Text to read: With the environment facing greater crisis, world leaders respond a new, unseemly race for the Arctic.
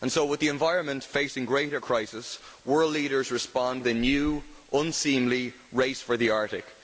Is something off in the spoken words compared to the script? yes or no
no